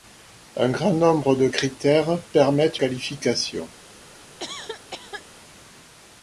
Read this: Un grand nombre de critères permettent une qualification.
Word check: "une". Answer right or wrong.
wrong